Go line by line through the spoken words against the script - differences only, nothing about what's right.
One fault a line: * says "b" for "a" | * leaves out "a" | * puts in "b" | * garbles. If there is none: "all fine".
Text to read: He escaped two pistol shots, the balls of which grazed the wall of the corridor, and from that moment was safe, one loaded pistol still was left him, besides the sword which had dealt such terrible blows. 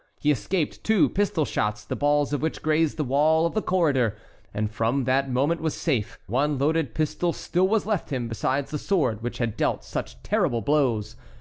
all fine